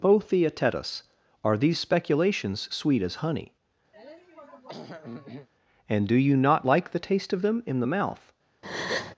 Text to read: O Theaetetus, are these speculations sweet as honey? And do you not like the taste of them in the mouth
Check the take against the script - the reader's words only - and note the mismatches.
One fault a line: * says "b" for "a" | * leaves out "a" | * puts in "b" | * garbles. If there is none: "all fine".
all fine